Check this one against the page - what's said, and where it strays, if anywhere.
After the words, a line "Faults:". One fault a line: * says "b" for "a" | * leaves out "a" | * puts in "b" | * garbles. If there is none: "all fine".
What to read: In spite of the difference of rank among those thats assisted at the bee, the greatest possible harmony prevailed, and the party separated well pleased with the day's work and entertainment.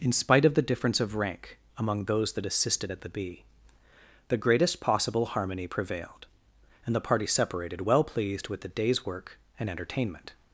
In spite of the difference of rank among those that assisted at the bee, the greatest possible harmony prevailed, and the party separated well pleased with the day's work and entertainment.
Faults:
* says "that" for "thats"